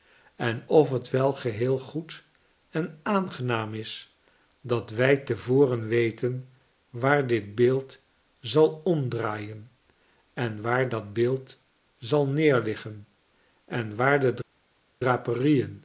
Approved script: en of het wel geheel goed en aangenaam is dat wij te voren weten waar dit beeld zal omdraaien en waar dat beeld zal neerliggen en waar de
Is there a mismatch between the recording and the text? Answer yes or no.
no